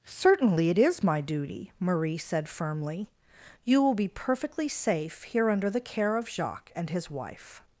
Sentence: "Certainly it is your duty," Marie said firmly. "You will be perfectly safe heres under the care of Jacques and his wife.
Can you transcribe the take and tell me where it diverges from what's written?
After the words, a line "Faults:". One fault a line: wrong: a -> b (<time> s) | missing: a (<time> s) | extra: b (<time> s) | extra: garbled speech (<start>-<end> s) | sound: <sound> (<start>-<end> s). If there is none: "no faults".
"Certainly it is my duty," Marie said firmly. "You will be perfectly safe here under the care of Jacques and his wife.
Faults:
wrong: your -> my (1.0 s)
wrong: heres -> here (5.2 s)